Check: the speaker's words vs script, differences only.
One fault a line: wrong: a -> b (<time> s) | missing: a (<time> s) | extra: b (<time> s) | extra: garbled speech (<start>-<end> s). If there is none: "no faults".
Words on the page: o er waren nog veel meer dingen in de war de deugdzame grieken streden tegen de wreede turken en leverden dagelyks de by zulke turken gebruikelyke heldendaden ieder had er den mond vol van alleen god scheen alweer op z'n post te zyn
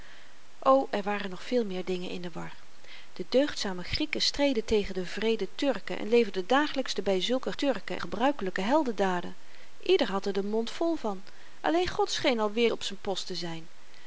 no faults